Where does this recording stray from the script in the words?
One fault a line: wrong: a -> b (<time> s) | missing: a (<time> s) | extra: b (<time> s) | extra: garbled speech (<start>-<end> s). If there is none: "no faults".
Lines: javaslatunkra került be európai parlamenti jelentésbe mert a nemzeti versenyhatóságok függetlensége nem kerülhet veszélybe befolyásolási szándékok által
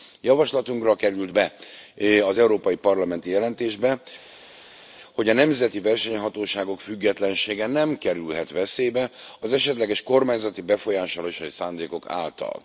extra: az (2.2 s)
wrong: mert -> hogy (5.1 s)
extra: az esetleges kormányzati (9.4 s)